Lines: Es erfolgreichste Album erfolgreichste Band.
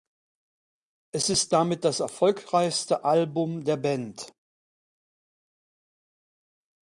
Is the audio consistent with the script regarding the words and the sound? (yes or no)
no